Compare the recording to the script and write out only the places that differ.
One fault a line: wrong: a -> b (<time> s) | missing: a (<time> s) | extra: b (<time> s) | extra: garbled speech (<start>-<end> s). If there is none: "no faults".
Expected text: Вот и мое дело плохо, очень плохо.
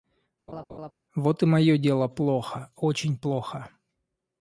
no faults